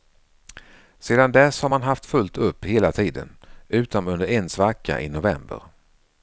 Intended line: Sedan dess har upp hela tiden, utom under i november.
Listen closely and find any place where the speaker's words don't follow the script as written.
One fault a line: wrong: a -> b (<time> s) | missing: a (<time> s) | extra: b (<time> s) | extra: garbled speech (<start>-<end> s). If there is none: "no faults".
extra: man haft fullt (1.7 s)
extra: en svacka (4.3 s)